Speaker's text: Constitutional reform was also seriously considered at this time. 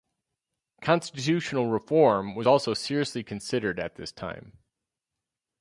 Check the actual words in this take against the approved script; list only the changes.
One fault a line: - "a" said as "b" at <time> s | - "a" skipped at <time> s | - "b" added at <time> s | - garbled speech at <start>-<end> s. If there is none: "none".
none